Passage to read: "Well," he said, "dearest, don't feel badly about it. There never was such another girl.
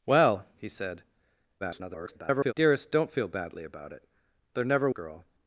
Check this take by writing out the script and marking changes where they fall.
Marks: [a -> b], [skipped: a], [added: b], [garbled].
"Well," he said, [garbled] "dearest, don't feel badly about it. There never [skipped: was such another] girl.